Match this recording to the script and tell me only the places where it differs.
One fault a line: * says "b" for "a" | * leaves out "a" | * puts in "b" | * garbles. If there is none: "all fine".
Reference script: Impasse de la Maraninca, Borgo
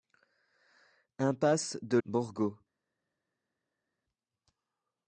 * leaves out "la Maraninca"